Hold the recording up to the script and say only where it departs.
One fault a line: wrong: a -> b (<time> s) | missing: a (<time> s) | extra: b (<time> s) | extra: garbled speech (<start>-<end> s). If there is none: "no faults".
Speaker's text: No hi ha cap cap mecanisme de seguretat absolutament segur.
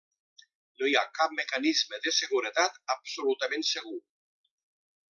missing: cap (1.3 s)